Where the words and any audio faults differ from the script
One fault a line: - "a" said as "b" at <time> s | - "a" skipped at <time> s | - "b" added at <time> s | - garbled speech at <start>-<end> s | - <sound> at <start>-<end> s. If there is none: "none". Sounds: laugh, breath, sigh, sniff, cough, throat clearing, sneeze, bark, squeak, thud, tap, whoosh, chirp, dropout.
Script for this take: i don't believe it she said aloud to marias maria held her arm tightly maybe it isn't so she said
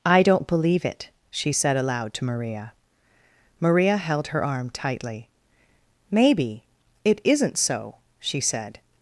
- "marias" said as "maria" at 2.2 s